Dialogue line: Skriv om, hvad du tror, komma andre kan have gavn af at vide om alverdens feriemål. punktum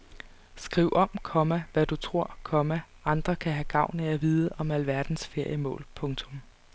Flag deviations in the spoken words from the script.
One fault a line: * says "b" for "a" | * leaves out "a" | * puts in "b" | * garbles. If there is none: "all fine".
* puts in "komma"